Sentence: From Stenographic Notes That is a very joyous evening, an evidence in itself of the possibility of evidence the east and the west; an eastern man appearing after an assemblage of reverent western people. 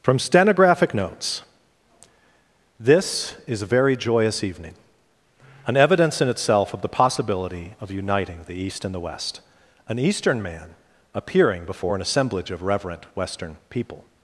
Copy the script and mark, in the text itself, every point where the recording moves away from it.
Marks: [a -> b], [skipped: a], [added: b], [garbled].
From Stenographic Notes [That -> THIS] is a very joyous evening, an evidence in itself of the possibility of [evidence -> uniting] the east and the west; an eastern man appearing [after -> before] an assemblage of reverent western people.